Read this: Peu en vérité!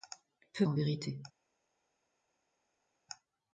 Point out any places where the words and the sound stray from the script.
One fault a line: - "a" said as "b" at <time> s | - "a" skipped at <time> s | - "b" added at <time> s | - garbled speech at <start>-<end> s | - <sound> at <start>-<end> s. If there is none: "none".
none